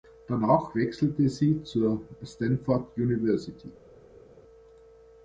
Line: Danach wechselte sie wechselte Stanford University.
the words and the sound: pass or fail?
fail